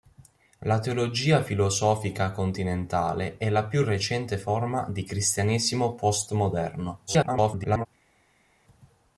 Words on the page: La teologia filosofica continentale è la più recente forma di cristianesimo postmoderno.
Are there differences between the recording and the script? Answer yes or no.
yes